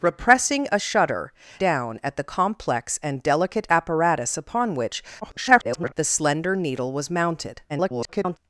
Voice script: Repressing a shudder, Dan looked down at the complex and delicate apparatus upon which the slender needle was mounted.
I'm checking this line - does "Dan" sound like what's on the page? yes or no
no